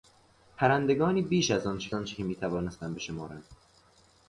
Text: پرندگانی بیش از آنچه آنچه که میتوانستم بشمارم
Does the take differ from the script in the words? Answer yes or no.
no